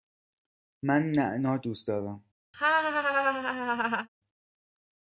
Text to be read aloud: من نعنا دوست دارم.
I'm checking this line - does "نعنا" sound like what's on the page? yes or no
yes